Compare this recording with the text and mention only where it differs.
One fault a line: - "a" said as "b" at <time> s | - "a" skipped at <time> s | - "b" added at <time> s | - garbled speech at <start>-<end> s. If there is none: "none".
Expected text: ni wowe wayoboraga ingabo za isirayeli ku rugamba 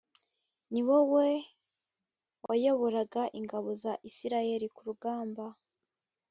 none